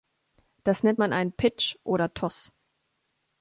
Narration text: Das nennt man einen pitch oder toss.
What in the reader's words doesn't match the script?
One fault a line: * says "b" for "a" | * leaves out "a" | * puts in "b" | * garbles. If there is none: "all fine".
all fine